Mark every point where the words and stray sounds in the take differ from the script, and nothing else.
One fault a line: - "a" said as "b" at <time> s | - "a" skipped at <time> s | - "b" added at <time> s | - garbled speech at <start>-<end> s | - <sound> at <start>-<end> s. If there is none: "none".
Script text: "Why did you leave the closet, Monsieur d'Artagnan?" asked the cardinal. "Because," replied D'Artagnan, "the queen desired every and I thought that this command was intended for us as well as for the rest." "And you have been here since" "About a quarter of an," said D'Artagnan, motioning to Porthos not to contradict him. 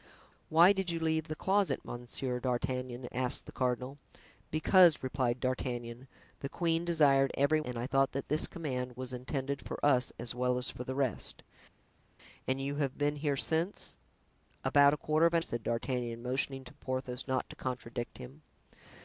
none